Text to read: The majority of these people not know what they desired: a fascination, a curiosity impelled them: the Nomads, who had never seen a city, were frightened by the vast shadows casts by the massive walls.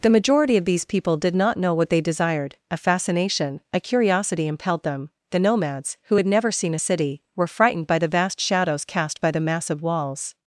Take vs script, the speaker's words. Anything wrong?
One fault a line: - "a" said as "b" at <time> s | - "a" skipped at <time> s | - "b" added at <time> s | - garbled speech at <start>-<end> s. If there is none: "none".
- "did" added at 1.1 s
- "casts" said as "cast" at 8.8 s